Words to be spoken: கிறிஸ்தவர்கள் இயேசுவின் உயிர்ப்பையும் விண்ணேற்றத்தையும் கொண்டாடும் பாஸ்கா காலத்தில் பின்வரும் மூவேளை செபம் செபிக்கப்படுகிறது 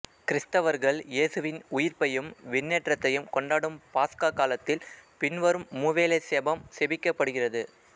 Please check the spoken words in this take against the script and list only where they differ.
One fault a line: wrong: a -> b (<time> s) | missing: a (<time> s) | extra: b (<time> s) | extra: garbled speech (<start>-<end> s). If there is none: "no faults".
no faults